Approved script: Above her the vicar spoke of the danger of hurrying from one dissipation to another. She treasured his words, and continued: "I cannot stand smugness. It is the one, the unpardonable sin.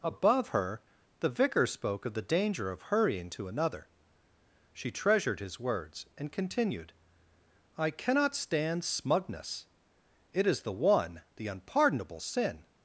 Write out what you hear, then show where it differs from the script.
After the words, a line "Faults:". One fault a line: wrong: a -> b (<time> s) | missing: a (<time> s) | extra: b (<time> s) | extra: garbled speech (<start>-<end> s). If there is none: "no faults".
Above her the vicar spoke of the danger of hurrying to another. She treasured his words, and continued: "I cannot stand smugness. It is the one, the unpardonable sin.
Faults:
missing: from one dissipation (3.3 s)